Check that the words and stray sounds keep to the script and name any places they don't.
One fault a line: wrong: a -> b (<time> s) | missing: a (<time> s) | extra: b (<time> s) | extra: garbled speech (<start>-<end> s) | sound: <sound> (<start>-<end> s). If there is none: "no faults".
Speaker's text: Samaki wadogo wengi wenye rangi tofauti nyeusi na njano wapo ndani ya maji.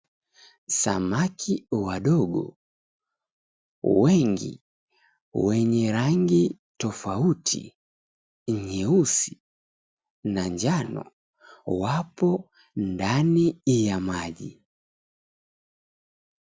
no faults